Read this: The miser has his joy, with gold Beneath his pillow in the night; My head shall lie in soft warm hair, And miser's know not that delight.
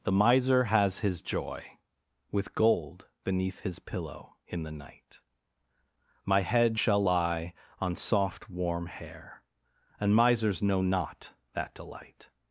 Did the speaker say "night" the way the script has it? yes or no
yes